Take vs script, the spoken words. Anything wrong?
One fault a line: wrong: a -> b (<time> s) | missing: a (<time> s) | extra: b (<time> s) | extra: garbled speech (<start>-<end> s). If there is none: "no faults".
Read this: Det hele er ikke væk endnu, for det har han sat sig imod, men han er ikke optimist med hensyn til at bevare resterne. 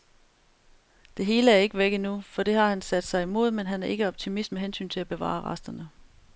no faults